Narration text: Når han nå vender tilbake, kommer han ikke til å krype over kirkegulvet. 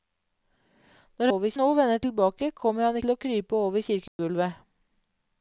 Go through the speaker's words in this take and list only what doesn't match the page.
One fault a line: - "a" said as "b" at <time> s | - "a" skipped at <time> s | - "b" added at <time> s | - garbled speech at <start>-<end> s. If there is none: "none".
- "han" said as "over" at 1.3 s
- "ikke" skipped at 3.0 s